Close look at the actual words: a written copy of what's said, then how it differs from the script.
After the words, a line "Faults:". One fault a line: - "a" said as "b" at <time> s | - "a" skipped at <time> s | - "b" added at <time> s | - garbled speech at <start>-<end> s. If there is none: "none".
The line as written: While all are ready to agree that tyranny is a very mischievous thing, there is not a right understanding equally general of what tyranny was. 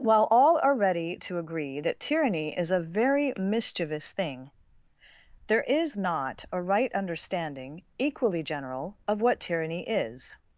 While all are ready to agree that tyranny is a very mischievous thing, there is not a right understanding equally general of what tyranny is.
Faults:
- "was" said as "is" at 9.8 s